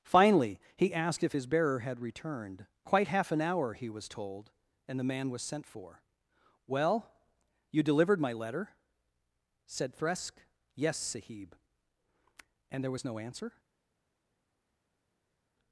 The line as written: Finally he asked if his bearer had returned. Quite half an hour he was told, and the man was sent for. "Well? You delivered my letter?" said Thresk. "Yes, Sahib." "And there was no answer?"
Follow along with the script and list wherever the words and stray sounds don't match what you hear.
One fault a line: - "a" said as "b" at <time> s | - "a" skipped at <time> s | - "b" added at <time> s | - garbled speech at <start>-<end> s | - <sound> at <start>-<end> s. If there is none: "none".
none